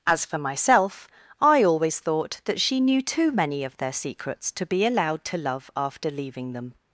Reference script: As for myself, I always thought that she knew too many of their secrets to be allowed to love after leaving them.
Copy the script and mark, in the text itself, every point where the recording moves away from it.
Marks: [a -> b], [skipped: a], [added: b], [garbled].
As for myself, I always thought that she knew too many of their secrets to be allowed to love after leaving them.